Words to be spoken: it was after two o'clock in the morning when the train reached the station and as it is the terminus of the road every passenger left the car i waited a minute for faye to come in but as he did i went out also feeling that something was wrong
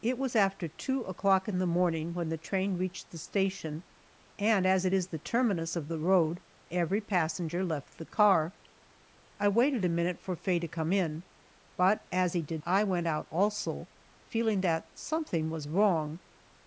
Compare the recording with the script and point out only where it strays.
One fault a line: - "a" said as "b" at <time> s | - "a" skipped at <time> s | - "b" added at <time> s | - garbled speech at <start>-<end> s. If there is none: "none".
none